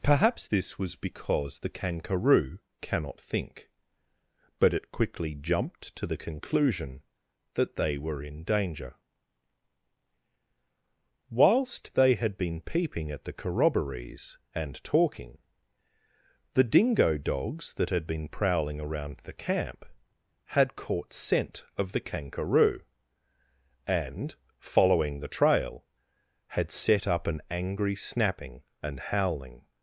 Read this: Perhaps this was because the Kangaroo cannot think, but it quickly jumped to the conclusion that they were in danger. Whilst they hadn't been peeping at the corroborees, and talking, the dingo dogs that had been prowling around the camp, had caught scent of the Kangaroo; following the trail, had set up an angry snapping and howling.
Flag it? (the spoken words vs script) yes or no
yes